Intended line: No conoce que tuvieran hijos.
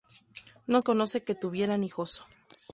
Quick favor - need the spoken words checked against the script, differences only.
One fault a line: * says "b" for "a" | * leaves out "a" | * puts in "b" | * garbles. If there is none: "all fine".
all fine